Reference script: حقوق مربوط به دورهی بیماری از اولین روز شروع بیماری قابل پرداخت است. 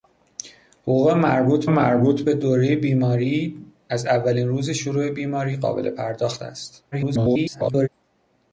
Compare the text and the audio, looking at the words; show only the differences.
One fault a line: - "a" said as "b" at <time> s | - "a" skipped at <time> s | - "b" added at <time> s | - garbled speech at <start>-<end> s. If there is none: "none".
- "مربوط" added at 1.6 s
- garbled speech at 6.9-7.9 s